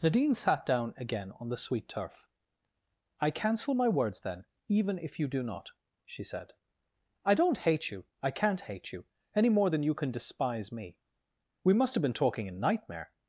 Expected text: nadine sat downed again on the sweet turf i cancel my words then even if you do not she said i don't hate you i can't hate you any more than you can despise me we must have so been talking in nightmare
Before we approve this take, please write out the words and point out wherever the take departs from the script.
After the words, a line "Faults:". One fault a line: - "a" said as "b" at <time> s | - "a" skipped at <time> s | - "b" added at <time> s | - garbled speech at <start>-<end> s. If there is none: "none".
nadine sat down again on the sweet turf i cancel my words then even if you do not she said i don't hate you i can't hate you any more than you can despise me we must have been talking in nightmare
Faults:
- "downed" said as "down" at 0.7 s
- "so" skipped at 12.0 s